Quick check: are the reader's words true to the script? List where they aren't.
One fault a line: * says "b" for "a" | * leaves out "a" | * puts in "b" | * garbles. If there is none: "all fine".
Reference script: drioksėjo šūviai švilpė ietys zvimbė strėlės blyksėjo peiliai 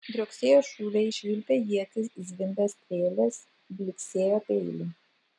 all fine